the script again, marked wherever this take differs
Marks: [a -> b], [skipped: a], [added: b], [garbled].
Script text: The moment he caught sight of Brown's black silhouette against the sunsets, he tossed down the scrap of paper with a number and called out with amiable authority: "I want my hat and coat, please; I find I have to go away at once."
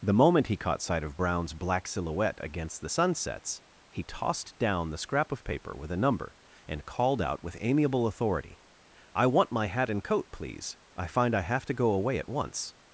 The moment he caught sight of Brown's black silhouette against the sunsets, he tossed down the scrap of paper with a number and called out with amiable authority: "I want my hat and coat, please; I find I have to go away at once."